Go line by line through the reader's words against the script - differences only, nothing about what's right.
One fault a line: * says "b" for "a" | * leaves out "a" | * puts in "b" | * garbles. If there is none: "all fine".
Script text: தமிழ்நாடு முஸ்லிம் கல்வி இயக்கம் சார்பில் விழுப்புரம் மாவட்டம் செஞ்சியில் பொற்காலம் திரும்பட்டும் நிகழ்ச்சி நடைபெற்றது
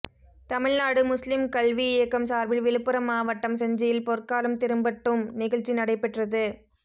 all fine